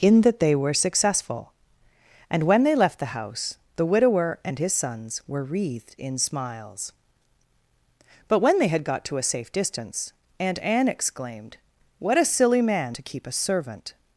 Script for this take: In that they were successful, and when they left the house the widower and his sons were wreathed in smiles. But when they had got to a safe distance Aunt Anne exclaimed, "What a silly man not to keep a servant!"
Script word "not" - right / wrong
wrong